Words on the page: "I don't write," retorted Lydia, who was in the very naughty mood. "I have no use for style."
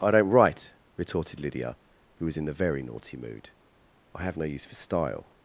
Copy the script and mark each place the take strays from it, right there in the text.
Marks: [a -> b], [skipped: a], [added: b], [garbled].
"I don't write," retorted Lydia, who was in the very naughty mood. "I have no use for style."